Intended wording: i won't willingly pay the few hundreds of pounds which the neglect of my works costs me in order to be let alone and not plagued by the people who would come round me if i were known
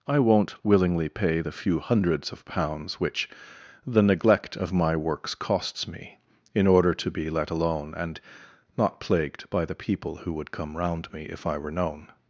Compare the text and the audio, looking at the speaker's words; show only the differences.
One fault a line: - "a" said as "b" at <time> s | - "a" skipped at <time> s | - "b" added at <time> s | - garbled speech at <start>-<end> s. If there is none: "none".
none